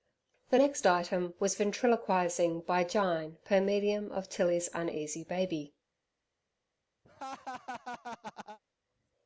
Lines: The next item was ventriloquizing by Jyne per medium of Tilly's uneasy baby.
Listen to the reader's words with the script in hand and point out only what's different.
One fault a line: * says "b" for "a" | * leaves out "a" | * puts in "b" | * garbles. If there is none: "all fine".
all fine